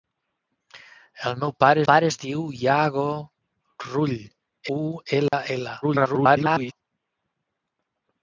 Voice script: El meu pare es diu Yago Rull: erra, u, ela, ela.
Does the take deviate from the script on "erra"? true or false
true